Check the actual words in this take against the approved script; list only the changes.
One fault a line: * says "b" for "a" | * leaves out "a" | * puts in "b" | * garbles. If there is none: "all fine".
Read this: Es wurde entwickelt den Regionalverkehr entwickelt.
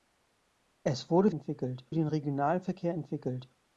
all fine